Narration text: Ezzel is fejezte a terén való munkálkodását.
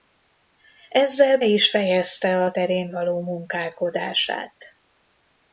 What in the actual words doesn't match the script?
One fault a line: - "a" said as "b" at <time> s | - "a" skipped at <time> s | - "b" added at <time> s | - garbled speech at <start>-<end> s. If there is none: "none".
none